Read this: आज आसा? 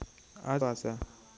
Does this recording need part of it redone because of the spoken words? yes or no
no